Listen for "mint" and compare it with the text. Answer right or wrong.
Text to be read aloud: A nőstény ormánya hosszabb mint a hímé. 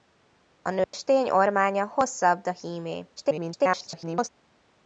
wrong